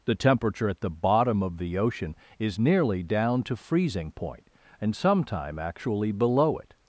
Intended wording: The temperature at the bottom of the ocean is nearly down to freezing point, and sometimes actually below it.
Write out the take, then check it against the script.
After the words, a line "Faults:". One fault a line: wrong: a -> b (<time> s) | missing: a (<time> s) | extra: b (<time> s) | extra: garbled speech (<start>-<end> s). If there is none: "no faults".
The temperature at the bottom of the ocean is nearly down to freezing point, and sometime actually below it.
Faults:
wrong: sometimes -> sometime (5.0 s)